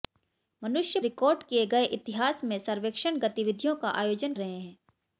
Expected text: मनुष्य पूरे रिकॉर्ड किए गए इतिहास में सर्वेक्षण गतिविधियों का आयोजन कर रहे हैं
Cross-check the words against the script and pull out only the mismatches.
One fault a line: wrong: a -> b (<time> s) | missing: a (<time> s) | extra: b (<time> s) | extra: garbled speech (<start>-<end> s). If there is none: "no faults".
missing: पूरे (1.0 s)
missing: कर (4.3 s)